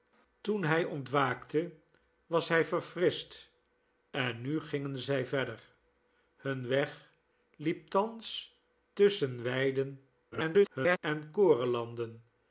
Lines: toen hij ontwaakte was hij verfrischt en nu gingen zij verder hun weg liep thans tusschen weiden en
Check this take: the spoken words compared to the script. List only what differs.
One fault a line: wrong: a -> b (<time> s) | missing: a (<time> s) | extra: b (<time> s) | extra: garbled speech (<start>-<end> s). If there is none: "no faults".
extra: garbled speech (10.3-11.0 s)